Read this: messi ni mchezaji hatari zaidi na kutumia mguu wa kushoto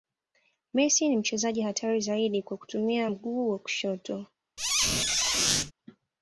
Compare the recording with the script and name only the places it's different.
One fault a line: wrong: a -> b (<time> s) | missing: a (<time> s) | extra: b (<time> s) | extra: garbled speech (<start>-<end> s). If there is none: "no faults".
wrong: na -> kwa (2.4 s)